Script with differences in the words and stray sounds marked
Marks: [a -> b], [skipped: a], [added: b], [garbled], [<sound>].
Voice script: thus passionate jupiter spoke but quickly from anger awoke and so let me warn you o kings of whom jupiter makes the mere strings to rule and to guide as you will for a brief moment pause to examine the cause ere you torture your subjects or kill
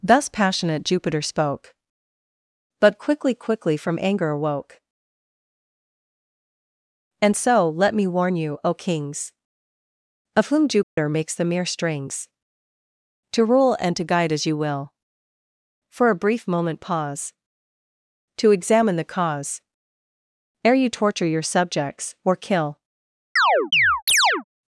thus passionate jupiter spoke but quickly [added: quickly] from anger awoke and so let me warn you o kings of whom jupiter [dropout] makes the mere strings to rule and to guide as you will for a brief moment pause to examine the cause ere you torture your subjects or kill [chirp]